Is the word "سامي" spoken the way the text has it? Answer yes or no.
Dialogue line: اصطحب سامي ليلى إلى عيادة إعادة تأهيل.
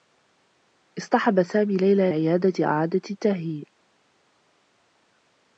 yes